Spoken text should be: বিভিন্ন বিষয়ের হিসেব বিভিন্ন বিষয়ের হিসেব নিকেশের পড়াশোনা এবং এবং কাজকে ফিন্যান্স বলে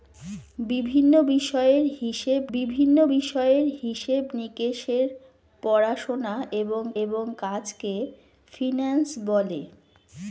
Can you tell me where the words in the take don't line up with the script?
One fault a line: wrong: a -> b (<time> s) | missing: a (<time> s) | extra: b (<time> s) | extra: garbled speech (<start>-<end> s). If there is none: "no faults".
no faults